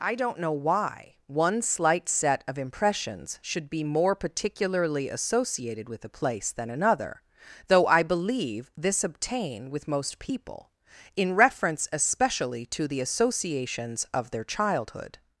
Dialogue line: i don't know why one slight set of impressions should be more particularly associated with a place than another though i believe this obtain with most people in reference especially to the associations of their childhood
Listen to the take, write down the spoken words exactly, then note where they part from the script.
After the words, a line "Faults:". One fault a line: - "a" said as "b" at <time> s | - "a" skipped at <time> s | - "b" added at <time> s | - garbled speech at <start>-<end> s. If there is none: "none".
i don't know why one slight set of impressions should be more particularly associated with a place than another though i believe this obtain with most people in reference especially to the associations of their childhood
Faults:
none